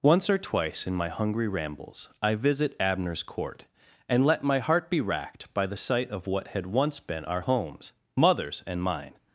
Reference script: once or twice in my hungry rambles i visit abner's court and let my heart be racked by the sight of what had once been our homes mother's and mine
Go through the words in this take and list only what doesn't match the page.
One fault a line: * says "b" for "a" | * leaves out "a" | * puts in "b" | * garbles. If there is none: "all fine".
all fine